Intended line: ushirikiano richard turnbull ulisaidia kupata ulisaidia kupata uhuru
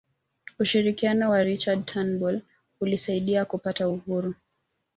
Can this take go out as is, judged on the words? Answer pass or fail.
fail